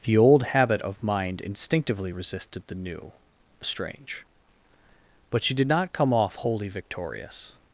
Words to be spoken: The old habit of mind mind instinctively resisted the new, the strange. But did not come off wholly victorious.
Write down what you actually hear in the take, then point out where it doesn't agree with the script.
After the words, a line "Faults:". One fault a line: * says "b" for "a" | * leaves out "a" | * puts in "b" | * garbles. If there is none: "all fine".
The old habit of mind instinctively resisted the new, the strange. But she did not come off wholly victorious.
Faults:
* leaves out "mind"
* puts in "she"